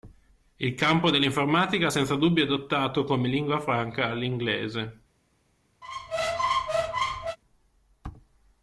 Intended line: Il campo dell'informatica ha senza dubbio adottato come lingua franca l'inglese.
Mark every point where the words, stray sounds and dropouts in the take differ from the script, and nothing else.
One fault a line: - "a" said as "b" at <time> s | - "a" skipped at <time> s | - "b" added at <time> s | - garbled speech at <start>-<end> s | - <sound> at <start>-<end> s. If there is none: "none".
- squeak at 5.8-7.4 s